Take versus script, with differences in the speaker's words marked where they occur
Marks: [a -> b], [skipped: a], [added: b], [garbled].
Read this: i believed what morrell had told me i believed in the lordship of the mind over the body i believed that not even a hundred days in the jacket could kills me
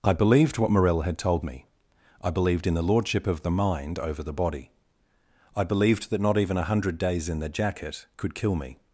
i believed what morrell had told me i believed in the lordship of the mind over the body i believed that not even a hundred days in the jacket could [kills -> kill] me